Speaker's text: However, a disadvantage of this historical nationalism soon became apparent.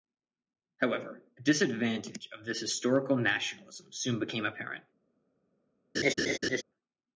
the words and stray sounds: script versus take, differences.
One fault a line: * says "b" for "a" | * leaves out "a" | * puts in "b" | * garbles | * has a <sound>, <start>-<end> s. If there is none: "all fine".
* has a laugh, 5.9-6.6 s